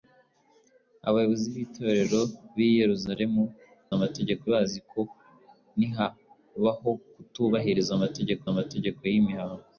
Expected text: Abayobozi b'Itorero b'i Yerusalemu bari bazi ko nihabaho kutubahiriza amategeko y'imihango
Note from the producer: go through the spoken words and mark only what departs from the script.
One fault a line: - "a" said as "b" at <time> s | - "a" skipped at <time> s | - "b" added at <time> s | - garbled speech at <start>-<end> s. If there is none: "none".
- "bari" said as "amategeko" at 4.0 s
- "amategeko" added at 8.5 s